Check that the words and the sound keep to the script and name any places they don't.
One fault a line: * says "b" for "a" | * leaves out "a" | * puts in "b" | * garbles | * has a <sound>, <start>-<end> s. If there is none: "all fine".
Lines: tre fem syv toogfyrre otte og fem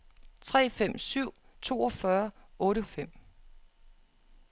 all fine